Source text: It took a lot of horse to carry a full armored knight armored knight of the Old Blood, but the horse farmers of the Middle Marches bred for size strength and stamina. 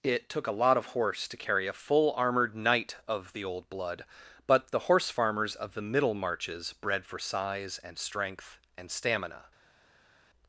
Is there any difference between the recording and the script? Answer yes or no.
yes